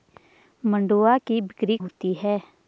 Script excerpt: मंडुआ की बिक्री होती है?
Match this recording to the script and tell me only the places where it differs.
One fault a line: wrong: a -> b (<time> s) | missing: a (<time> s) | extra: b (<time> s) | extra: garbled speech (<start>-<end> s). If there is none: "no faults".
no faults